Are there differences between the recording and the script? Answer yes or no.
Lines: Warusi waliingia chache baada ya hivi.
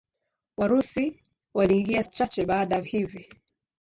no